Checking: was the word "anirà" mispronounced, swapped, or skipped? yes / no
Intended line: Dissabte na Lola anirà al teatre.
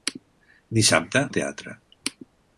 yes